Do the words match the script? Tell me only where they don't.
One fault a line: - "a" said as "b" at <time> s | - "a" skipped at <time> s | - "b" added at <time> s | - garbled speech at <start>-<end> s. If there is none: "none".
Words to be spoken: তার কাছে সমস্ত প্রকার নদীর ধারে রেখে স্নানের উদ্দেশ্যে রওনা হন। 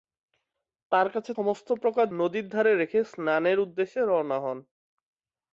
none